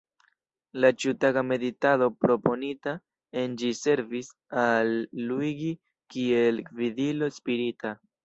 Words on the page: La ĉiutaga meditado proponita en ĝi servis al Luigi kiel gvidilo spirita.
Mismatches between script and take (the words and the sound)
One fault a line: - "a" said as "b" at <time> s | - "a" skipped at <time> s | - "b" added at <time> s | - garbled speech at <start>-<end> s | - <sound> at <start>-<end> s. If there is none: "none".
none